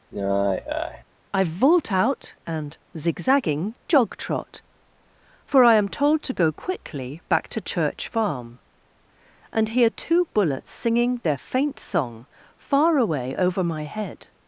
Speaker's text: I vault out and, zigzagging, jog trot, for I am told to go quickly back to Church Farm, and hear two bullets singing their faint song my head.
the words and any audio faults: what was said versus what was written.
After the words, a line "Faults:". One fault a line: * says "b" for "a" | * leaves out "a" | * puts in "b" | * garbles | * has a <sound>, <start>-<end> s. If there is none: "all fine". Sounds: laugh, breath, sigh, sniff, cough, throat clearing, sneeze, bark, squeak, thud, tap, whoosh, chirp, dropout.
I vault out and, zigzagging, jog trot, for I am told to go quickly back to Church Farm, and hear two bullets singing their faint song far away over my head.
Faults:
* has a sigh, 0.1-1.0 s
* puts in "far away over"